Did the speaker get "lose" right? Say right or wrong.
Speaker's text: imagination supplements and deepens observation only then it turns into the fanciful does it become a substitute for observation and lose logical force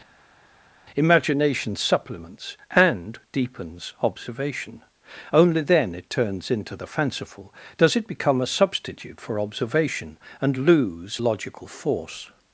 right